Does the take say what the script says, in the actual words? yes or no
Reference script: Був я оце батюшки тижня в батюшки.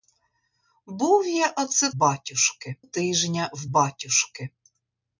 yes